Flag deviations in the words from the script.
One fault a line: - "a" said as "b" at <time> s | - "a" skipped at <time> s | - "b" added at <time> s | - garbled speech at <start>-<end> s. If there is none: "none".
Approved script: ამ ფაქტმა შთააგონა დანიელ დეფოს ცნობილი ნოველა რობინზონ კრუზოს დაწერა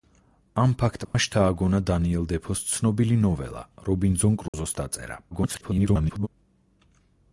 - garbled speech at 5.3-6.3 s